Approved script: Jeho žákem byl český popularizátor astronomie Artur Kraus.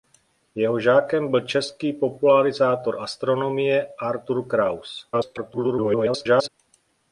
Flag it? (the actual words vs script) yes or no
yes